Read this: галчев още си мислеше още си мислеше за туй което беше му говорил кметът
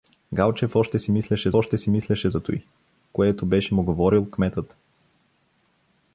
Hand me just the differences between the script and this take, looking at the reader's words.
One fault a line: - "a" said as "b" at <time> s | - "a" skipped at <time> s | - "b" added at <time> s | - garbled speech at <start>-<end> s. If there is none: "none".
none